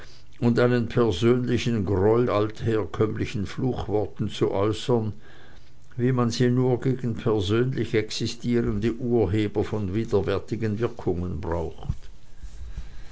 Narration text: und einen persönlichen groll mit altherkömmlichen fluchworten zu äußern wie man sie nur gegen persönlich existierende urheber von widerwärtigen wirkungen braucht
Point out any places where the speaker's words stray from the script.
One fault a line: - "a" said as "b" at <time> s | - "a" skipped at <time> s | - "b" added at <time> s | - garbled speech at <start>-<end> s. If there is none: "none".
- "mit" skipped at 2.3 s